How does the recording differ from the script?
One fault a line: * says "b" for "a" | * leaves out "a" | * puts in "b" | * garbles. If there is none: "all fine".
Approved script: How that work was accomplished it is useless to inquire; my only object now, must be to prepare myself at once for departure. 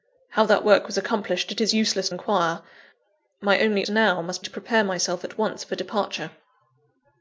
* leaves out "to"
* leaves out "object"
* leaves out "be"